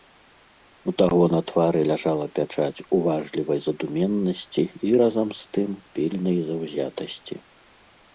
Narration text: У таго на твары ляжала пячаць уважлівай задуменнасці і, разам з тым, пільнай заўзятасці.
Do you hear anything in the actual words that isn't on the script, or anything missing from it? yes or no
no